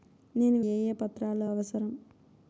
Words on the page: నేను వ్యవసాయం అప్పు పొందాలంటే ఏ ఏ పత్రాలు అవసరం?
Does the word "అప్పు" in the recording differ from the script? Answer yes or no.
yes